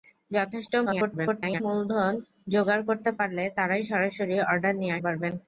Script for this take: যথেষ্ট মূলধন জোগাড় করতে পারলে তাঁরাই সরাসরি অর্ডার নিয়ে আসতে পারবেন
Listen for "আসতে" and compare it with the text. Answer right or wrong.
wrong